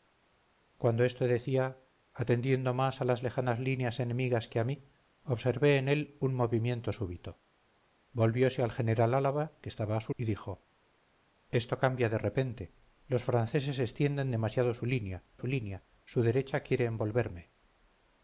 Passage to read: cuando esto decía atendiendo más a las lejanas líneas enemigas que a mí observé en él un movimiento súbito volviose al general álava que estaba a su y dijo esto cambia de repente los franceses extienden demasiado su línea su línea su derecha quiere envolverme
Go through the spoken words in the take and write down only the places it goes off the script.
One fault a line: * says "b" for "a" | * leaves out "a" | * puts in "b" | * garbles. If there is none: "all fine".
all fine